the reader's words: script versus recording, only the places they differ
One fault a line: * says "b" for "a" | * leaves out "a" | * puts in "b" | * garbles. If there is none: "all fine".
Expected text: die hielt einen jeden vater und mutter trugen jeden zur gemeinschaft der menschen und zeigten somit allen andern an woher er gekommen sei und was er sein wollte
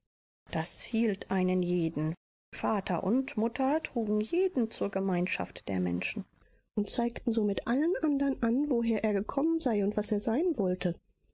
* says "das" for "die"